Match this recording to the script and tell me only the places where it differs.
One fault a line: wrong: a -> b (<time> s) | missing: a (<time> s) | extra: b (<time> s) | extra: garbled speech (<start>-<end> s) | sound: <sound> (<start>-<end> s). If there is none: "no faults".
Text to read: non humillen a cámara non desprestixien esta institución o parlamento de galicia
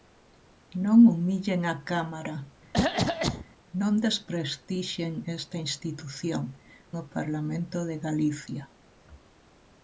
sound: cough (2.7-3.5 s)